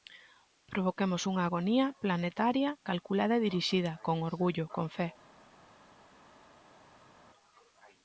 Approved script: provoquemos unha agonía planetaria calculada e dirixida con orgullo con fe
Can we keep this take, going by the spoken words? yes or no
yes